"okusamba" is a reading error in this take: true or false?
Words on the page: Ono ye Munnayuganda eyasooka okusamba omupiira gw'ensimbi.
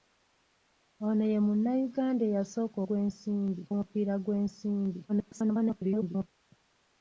true